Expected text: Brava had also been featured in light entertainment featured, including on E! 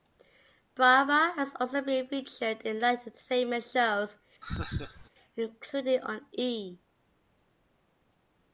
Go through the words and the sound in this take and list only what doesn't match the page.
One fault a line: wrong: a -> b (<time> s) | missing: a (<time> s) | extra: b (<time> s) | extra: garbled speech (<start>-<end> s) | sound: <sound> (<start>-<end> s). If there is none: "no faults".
wrong: had -> has (1.4 s)
wrong: featured -> shows (3.6 s)
sound: laugh (4.4-5.1 s)